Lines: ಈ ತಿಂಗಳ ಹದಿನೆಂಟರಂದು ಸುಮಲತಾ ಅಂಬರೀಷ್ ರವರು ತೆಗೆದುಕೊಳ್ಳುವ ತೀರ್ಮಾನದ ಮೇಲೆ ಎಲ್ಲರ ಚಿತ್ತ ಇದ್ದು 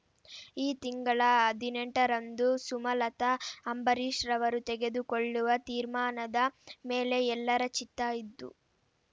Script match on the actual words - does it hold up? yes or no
yes